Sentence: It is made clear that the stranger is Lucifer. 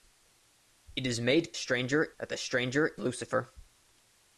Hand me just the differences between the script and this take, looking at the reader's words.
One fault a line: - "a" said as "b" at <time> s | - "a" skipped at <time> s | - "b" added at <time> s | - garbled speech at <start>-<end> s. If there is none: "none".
- "clear" said as "stranger" at 1.5 s
- "is" skipped at 2.9 s